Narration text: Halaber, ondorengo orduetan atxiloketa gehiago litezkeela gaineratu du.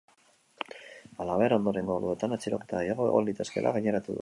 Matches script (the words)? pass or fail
fail